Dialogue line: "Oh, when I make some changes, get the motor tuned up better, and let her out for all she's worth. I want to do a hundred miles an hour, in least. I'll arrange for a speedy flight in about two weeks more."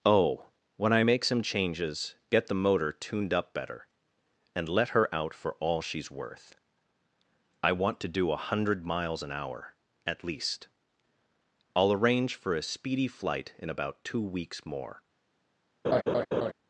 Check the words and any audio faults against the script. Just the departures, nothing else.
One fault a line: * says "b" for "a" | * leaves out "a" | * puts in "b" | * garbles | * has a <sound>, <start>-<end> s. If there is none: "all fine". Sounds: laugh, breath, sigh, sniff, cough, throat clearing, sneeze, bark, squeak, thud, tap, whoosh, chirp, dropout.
* says "at" for "in"
* has a laugh, 15.8-16.5 s